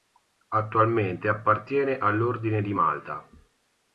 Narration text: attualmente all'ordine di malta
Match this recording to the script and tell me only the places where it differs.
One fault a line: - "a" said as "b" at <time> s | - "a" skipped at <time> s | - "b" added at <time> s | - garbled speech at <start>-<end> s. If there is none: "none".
- "appartiene" added at 1.3 s